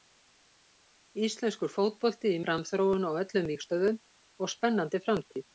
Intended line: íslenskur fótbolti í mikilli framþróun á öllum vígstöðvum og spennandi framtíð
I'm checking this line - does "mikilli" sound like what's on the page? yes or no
no